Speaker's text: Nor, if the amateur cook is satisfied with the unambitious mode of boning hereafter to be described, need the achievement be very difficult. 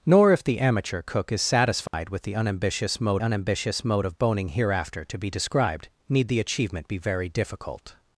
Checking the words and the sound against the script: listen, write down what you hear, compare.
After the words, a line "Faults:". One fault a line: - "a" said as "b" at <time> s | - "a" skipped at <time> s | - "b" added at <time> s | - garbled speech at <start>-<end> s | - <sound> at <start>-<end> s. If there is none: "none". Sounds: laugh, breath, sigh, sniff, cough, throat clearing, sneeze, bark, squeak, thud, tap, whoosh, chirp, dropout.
Nor, if the amateur cook is satisfied with the unambitious mode unambitious mode of boning hereafter to be described, need the achievement be very difficult.
Faults:
- dropout at 1.9-1.9 s
- "unambitious mode" added at 3.2 s